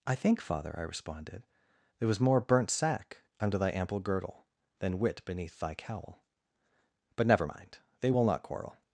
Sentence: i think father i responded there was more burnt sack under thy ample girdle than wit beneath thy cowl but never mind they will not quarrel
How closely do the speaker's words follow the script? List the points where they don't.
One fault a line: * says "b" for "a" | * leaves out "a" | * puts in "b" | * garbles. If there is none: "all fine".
all fine